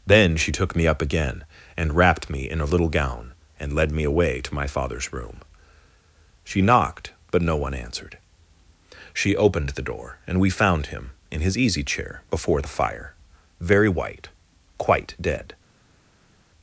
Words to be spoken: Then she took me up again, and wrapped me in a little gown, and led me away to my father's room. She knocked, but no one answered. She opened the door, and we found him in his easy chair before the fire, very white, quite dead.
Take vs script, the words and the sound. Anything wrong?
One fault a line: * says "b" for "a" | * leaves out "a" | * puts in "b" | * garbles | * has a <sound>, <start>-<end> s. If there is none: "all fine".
all fine